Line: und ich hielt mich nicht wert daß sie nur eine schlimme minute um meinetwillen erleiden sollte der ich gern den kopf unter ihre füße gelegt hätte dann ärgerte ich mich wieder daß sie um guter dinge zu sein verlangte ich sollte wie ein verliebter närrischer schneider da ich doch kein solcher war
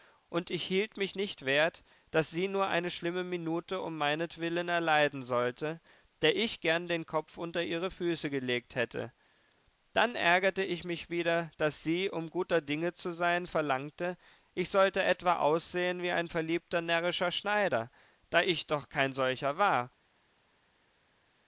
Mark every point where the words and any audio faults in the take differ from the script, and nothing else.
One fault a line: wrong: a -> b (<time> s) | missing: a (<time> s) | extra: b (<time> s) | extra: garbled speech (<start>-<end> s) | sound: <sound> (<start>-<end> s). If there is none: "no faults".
extra: etwa aussehen (15.0 s)